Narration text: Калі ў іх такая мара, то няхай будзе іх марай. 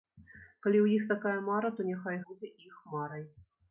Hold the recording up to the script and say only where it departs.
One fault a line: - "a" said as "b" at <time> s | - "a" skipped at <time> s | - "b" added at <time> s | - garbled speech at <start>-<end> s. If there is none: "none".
none